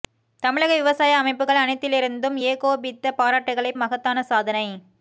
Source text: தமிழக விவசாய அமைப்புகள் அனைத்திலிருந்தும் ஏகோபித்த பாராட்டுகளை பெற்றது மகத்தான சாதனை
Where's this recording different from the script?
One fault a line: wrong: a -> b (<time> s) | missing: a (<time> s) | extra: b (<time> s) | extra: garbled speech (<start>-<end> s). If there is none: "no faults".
missing: பெற்றது (3.7 s)